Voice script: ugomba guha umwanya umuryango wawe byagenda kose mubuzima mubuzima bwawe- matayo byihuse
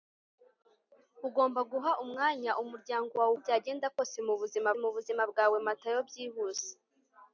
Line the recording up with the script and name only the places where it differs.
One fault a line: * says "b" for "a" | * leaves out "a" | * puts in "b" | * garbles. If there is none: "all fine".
all fine